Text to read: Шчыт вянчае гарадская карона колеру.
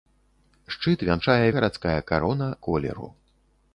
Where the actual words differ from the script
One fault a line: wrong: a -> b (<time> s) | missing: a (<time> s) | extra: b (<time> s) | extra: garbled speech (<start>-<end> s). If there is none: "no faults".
no faults